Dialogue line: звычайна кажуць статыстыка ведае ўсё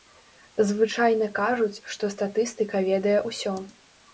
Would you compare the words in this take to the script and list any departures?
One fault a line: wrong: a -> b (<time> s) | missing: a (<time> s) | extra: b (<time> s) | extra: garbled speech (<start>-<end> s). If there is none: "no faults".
extra: што (2.0 s)